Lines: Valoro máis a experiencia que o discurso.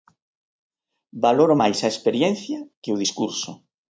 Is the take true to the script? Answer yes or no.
yes